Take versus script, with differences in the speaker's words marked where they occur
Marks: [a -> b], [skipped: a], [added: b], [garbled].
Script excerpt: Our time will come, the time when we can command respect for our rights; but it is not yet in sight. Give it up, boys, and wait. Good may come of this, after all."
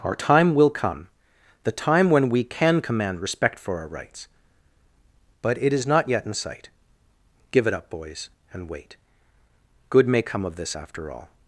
Our time will come, the time when we can command respect for our rights; but it is not yet in sight. Give it up, boys, and wait. Good may come of this, after all."